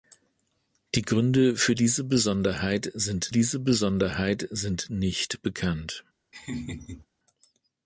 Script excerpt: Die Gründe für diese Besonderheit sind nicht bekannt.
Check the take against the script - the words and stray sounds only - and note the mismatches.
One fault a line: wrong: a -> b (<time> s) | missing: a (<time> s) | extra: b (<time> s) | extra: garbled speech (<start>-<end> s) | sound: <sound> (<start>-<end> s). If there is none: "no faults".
extra: diese Besonderheit sind (3.3 s)
sound: laugh (6.3-7.1 s)